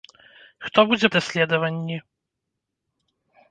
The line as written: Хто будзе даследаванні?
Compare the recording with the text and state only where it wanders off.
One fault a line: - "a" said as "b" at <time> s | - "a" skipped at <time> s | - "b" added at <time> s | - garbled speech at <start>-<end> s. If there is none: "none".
none